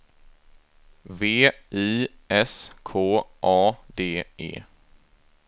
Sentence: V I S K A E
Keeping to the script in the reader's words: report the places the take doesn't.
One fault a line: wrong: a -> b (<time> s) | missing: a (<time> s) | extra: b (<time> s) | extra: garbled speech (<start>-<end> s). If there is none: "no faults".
extra: D (4.0 s)